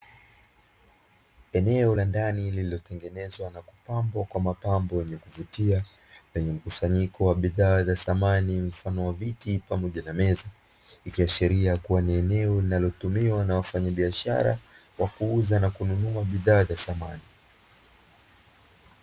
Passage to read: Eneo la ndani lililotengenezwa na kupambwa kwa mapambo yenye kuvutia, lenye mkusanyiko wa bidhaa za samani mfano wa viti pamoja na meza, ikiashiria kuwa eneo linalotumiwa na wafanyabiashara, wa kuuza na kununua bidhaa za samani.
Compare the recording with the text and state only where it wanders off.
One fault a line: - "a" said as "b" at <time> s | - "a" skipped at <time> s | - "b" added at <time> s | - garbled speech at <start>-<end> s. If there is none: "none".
- "ni" added at 12.0 s